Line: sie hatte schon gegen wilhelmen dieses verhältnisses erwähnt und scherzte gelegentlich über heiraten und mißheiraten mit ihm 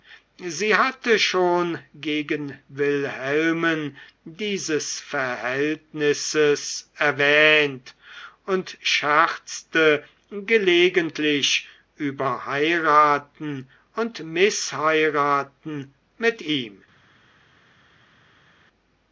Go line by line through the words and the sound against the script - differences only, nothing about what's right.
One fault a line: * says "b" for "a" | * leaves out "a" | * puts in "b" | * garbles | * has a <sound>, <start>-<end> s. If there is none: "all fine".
all fine